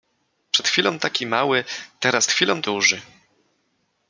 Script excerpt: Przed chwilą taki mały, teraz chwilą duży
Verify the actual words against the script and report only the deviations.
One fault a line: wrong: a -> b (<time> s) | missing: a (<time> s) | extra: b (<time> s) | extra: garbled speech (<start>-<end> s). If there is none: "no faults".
no faults